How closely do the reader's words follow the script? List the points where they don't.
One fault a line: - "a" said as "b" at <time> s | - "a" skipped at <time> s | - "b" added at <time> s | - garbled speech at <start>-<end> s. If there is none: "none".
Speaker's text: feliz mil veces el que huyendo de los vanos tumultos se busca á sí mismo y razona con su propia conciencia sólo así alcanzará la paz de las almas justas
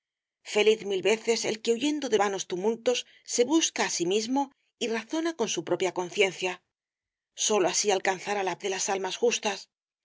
- "los" skipped at 2.2 s
- "paz" skipped at 8.6 s